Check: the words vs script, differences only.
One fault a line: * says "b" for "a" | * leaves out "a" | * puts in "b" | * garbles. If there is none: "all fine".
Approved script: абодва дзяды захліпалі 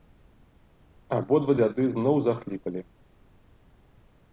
* puts in "зноў"